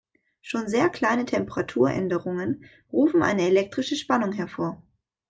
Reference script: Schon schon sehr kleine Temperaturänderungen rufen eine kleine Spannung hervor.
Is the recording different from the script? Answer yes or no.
yes